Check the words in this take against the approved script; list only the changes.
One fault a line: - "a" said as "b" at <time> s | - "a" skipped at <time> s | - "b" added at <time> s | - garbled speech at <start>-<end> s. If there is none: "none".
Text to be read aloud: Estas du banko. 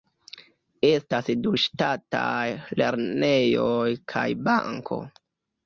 - "ŝtataj lernejoj kaj" added at 1.6 s